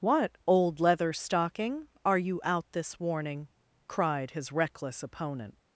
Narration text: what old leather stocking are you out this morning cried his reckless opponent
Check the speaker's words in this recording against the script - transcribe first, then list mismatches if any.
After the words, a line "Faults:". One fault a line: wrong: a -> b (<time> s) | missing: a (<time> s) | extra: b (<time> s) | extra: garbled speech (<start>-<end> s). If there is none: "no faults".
what old leather stocking are you out this warning cried his reckless opponent
Faults:
wrong: morning -> warning (3.0 s)